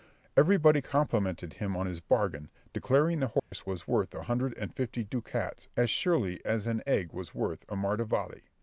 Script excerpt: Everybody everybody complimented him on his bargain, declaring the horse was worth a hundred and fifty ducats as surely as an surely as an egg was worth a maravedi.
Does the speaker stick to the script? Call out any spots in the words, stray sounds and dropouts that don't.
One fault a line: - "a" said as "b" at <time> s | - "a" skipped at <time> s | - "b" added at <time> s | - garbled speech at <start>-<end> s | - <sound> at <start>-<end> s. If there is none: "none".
- "everybody" skipped at 0.8 s
- dropout at 3.4-3.5 s
- "surely as an" skipped at 6.8 s